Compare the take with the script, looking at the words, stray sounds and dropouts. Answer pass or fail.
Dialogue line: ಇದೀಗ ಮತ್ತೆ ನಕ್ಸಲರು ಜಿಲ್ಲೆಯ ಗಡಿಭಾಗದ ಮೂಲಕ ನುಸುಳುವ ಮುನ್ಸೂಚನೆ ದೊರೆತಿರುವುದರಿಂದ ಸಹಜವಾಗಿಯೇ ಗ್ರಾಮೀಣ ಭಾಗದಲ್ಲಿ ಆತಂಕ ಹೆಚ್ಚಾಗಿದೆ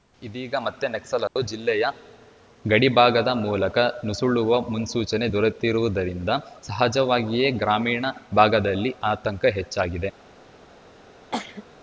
fail